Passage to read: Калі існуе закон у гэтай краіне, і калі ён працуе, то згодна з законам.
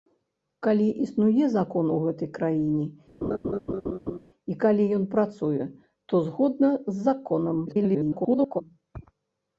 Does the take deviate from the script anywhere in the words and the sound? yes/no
yes